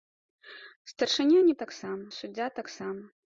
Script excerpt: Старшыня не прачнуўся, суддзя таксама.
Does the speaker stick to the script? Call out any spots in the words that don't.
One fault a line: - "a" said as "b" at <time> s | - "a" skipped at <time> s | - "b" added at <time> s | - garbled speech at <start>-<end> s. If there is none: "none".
- "прачнуўся" said as "таксама" at 1.7 s